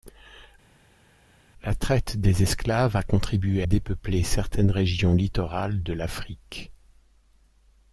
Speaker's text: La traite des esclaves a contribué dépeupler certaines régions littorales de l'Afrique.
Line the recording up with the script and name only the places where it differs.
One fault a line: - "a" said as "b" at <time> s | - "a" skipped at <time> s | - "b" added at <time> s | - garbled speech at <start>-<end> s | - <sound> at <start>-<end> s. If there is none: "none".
none